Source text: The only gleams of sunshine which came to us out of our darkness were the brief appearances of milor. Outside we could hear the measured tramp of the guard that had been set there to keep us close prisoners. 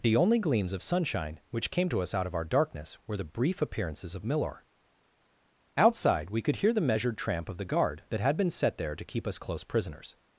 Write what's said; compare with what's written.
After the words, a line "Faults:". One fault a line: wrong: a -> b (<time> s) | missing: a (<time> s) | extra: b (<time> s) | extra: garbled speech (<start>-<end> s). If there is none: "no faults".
The only gleams of sunshine which came to us out of our darkness were the brief appearances of milor. Outside we could hear the measured tramp of the guard that had been set there to keep us close prisoners.
Faults:
no faults